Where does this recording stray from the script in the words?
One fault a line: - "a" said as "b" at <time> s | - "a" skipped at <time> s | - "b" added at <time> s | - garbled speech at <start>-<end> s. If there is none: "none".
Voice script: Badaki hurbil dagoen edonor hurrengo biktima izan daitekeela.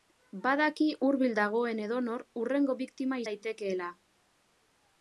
- "izan" skipped at 3.2 s